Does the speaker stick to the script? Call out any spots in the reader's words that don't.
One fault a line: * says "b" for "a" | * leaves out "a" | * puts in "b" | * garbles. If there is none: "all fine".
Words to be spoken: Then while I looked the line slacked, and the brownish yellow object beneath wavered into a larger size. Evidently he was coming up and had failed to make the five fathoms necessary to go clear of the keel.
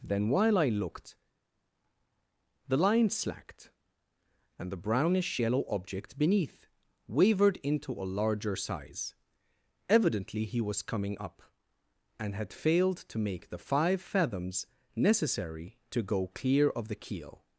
all fine